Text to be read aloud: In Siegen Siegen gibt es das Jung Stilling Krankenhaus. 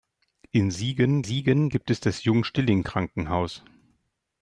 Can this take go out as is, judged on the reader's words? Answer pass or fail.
pass